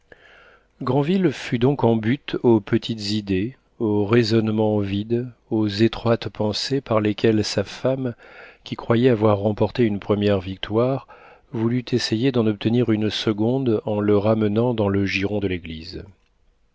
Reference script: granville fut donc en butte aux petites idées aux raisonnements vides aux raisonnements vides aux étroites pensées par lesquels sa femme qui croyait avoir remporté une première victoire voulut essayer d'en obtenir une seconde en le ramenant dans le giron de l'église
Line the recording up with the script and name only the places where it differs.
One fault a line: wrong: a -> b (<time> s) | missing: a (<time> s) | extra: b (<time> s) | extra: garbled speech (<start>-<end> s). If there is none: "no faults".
missing: raisonnements vides aux (5.7 s)